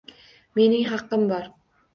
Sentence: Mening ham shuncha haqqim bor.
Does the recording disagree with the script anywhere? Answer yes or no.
yes